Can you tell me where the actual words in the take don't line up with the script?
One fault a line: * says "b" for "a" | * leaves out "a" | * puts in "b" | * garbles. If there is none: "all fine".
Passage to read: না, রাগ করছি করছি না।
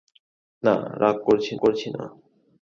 all fine